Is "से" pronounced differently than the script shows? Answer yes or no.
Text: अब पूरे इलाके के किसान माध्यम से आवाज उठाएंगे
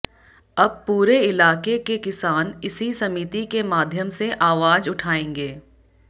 no